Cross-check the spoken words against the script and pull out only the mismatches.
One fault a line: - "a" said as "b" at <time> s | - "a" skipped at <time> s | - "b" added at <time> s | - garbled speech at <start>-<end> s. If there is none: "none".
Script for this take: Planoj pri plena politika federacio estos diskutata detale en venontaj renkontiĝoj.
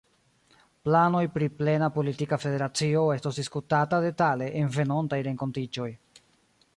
none